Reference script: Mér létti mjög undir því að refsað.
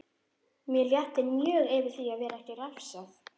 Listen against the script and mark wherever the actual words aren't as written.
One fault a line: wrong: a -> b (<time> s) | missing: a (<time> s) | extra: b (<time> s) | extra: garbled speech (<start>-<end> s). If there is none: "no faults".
wrong: undir -> yfir (1.8 s)
extra: vera ekki (2.2 s)